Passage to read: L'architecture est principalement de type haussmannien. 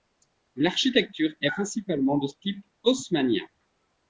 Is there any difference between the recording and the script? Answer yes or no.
no